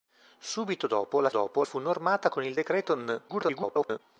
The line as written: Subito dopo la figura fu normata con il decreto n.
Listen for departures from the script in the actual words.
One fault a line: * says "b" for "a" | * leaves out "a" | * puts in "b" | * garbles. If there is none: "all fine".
* says "dopo" for "figura"
* garbles